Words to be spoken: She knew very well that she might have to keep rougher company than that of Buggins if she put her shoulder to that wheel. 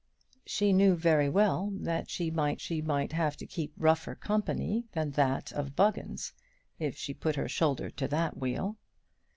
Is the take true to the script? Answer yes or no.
no